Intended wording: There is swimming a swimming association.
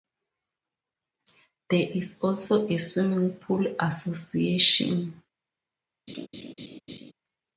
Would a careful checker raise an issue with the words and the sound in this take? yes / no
yes